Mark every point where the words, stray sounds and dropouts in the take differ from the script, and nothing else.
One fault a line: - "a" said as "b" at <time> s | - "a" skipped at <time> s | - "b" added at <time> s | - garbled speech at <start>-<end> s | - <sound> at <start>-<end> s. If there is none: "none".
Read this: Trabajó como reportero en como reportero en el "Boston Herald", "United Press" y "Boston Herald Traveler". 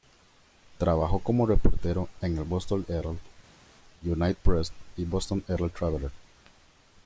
- "como reportero en" skipped at 2.4 s